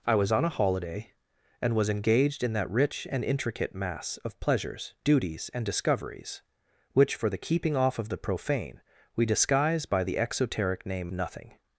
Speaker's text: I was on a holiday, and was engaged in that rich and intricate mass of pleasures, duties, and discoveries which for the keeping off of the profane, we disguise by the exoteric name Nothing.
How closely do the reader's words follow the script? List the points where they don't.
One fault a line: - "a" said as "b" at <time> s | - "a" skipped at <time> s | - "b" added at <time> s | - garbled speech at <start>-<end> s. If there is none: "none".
none